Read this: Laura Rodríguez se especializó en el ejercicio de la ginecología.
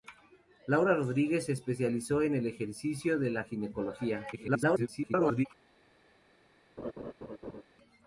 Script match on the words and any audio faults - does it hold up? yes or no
no